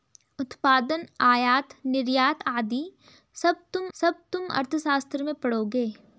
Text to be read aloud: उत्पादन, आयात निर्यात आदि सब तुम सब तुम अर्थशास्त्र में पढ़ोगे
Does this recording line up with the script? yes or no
yes